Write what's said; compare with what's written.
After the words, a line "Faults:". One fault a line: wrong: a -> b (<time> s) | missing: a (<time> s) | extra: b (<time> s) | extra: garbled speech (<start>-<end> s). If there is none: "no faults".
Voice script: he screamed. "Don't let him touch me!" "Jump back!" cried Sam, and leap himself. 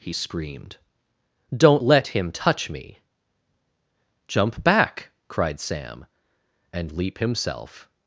he screamed. "Don't let him touch me!" "Jump back!" cried Sam, and leap himself.
Faults:
no faults